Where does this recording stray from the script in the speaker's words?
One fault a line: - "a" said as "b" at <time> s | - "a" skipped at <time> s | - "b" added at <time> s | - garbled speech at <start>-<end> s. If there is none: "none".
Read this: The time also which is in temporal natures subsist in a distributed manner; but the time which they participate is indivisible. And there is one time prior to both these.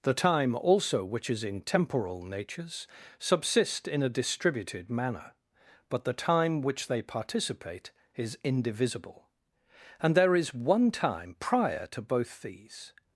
none